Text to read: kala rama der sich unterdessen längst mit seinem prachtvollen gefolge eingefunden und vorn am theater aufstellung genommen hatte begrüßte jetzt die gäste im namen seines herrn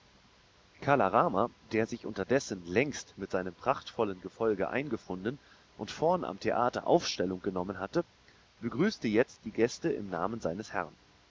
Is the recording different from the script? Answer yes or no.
no